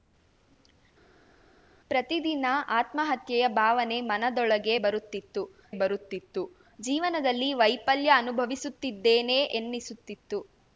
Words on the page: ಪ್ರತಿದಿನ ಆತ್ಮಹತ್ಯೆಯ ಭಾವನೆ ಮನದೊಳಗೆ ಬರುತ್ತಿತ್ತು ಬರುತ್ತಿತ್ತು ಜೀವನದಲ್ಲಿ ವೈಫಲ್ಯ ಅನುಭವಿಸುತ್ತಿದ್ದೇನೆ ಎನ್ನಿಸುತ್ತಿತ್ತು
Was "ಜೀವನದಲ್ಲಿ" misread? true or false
false